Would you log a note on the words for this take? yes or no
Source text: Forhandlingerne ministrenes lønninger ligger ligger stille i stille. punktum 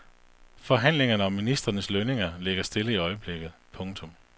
yes